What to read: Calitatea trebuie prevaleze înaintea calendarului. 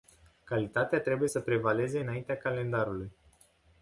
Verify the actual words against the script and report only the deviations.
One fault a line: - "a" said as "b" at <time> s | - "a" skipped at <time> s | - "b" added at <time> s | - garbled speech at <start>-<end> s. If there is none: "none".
- "să" added at 1.3 s